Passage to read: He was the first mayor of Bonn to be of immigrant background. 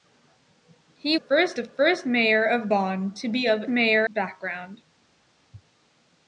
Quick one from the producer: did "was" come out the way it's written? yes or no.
no